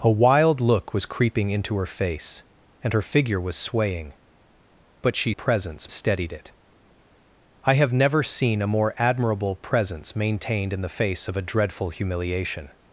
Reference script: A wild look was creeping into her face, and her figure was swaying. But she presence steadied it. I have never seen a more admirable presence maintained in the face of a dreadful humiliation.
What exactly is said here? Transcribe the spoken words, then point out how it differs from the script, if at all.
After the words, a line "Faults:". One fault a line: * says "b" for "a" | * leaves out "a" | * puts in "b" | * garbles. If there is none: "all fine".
A wild look was creeping into her face, and her figure was swaying. But she presence steadied it. I have never seen a more admirable presence maintained in the face of a dreadful humiliation.
Faults:
all fine